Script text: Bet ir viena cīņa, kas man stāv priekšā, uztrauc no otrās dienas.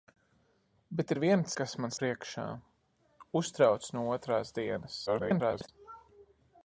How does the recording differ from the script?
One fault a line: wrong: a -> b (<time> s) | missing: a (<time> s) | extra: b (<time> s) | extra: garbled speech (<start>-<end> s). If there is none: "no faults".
missing: cīņa (1.5 s)
missing: stāv (1.9 s)
extra: garbled speech (5.1-5.7 s)